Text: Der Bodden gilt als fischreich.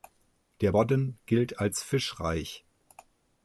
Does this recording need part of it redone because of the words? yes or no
no